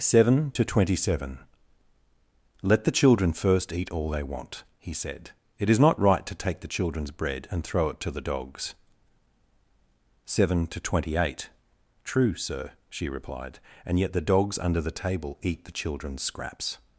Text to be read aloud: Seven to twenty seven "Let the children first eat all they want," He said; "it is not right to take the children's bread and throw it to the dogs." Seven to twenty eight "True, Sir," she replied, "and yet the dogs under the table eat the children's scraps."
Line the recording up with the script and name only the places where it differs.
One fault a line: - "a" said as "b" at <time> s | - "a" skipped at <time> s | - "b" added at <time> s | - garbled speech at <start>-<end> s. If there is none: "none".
none